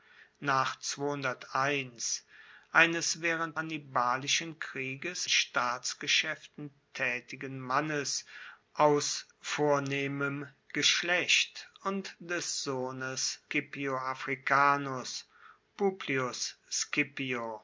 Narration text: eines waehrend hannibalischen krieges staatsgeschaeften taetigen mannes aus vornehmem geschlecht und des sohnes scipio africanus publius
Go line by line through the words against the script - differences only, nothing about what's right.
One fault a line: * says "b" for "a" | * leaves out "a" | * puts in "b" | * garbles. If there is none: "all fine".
all fine